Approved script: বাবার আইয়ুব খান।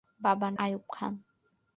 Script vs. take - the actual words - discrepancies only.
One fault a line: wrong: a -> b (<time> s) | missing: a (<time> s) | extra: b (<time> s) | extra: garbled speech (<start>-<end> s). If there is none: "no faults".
no faults